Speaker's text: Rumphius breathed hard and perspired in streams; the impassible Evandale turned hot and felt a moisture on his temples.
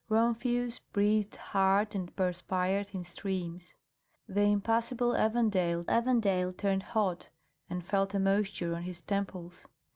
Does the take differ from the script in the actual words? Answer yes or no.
yes